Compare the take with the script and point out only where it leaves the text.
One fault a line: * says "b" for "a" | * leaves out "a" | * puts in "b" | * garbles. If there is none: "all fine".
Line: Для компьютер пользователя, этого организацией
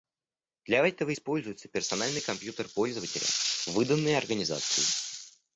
* puts in "этого используется персональный"
* says "выданный" for "этого"